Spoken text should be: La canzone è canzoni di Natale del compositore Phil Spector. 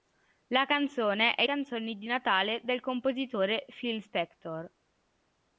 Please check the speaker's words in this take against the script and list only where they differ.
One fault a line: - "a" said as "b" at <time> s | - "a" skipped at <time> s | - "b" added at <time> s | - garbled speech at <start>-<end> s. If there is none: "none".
none